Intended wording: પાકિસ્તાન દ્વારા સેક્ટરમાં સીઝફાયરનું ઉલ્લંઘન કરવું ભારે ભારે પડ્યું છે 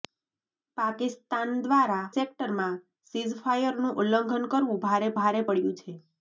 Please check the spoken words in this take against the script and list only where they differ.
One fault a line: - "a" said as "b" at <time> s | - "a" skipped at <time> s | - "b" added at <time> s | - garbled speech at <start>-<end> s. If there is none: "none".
none